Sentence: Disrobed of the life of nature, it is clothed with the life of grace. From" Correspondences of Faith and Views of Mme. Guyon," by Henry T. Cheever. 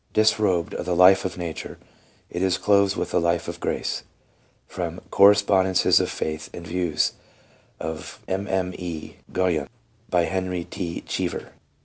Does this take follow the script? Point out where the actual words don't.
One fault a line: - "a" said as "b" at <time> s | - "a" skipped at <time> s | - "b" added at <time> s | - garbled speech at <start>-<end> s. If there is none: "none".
none